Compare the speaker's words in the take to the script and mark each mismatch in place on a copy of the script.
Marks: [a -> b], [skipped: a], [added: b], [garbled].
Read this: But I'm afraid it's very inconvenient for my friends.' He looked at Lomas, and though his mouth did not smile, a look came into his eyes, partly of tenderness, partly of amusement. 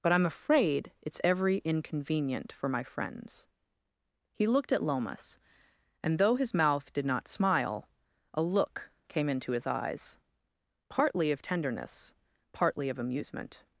But I'm afraid it's [very -> every] inconvenient for my friends.' He looked at Lomas, and though his mouth did not smile, a look came into his eyes, partly of tenderness, partly of amusement.